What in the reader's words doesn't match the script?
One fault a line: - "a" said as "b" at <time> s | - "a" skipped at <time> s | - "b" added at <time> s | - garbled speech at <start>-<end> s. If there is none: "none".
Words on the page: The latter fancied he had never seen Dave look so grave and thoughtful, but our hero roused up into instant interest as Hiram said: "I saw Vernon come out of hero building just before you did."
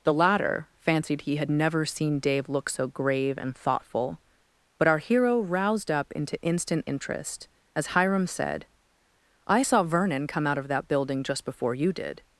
- "hero" said as "that" at 10.7 s